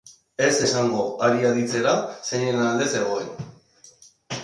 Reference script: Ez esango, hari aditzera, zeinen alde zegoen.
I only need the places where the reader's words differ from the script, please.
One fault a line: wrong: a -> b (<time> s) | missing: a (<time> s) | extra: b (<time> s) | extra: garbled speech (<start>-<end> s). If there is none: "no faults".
no faults